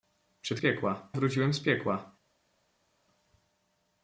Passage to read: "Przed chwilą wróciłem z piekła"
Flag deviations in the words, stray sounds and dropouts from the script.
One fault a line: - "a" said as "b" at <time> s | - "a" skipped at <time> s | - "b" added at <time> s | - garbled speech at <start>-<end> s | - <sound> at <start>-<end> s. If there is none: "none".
- "chwilą" said as "piekła" at 0.6 s